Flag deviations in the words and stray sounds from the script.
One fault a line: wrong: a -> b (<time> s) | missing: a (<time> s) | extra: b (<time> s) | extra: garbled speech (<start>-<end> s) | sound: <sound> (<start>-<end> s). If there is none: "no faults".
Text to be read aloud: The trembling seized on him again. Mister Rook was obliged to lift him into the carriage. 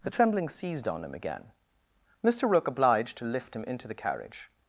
missing: was (2.7 s)